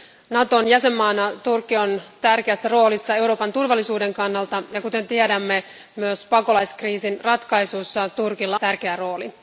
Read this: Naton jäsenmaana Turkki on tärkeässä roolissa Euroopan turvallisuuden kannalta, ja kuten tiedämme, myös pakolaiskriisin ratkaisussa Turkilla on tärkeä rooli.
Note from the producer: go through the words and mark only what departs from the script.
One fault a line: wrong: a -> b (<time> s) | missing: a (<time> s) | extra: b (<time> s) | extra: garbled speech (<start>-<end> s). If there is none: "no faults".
missing: on (8.6 s)